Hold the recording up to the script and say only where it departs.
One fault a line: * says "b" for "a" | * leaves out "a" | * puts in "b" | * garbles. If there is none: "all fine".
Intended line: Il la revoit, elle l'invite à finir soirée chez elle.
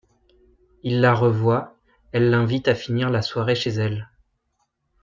* puts in "la"